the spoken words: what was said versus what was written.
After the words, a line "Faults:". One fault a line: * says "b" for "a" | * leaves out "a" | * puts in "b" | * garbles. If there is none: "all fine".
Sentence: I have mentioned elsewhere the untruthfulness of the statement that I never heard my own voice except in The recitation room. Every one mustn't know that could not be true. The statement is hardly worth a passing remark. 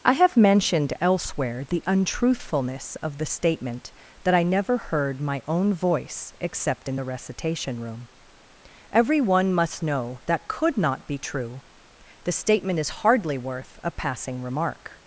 I have mentioned elsewhere the untruthfulness of the statement that I never heard my own voice except in The recitation room. Every one must know that could not be true. The statement is hardly worth a passing remark.
Faults:
* says "must" for "mustn't"